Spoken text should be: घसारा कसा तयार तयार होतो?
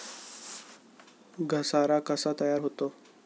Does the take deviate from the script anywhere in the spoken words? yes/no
yes